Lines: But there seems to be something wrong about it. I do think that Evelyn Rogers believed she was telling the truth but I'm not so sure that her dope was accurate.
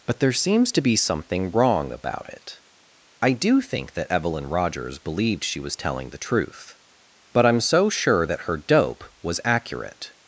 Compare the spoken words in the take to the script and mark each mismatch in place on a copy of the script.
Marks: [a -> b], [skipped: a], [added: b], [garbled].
But there seems to be something wrong about it. I do think that Evelyn Rogers believed she was telling the truth but I'm [skipped: not] so sure that her dope was accurate.